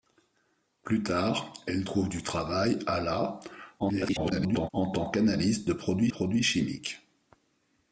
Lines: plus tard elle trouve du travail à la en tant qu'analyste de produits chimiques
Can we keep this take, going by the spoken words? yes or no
no